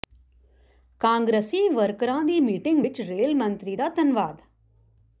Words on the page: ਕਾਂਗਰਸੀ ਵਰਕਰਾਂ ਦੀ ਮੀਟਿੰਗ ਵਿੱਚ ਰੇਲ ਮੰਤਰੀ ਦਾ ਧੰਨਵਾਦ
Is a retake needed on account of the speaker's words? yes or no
no